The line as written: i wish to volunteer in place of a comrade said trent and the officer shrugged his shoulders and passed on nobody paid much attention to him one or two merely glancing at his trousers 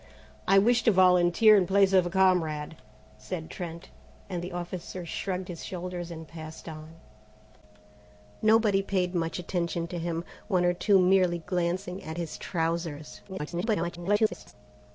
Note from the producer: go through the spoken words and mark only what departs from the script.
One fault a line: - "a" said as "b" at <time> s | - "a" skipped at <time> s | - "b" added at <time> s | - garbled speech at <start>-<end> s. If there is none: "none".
- garbled speech at 13.3-14.5 s